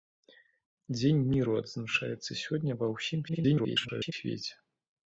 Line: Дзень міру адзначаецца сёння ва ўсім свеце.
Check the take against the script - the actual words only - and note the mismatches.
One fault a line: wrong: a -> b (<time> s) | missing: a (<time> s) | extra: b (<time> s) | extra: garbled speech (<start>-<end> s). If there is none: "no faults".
extra: garbled speech (3.3-4.1 s)